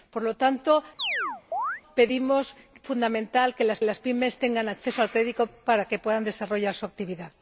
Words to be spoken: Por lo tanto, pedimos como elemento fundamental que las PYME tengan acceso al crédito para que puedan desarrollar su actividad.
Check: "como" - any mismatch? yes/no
yes